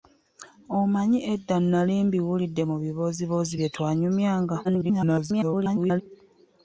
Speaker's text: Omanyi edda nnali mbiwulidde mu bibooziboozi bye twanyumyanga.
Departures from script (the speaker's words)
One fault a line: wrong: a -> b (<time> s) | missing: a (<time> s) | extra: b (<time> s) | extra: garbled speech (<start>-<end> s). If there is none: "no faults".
extra: garbled speech (4.6-6.0 s)